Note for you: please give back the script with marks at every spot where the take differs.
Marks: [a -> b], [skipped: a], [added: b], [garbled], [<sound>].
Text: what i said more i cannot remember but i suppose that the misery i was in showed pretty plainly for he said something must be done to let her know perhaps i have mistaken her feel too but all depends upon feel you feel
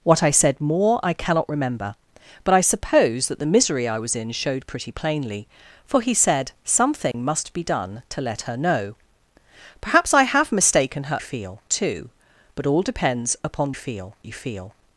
what i said more i cannot remember but i suppose that the misery i was in showed pretty plainly for he said something [dropout] must be done to let her know perhaps i have mistaken her feel too but all depends upon feel you feel